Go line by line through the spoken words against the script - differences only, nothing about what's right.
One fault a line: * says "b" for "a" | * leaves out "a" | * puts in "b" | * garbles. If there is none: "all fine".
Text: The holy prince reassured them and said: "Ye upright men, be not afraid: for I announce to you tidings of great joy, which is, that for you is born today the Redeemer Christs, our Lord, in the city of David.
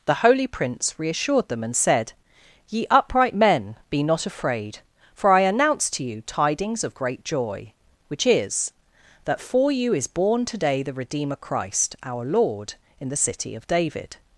* says "Christ" for "Christs"